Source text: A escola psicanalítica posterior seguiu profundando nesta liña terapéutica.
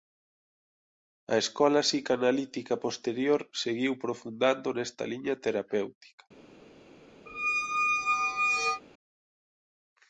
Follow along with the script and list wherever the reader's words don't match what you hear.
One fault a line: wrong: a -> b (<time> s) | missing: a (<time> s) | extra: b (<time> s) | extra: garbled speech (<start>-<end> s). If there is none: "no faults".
no faults